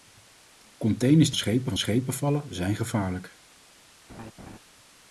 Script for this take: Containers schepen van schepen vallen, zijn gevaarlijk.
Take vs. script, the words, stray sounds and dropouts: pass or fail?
fail